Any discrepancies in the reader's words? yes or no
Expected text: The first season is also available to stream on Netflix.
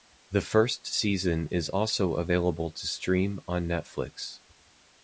no